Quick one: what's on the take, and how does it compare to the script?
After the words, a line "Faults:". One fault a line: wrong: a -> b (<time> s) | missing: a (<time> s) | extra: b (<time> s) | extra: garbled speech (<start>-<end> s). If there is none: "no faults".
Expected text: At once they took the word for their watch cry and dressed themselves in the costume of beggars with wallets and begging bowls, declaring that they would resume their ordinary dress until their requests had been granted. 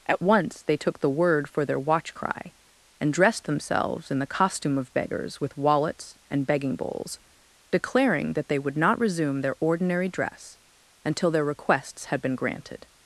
At once they took the word for their watch cry and dressed themselves in the costume of beggars with wallets and begging bowls, declaring that they would not resume their ordinary dress until their requests had been granted.
Faults:
extra: not (8.8 s)